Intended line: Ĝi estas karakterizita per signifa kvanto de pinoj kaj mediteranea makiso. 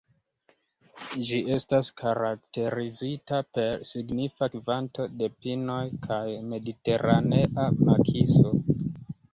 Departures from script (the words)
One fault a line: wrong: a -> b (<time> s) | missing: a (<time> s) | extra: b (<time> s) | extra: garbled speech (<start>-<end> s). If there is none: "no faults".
no faults